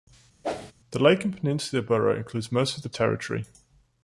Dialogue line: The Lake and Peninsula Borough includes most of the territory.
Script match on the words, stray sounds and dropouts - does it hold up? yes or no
no